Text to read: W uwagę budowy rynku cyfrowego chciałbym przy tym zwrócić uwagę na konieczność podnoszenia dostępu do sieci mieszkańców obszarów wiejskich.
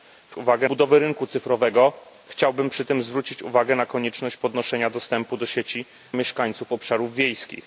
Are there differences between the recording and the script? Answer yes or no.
no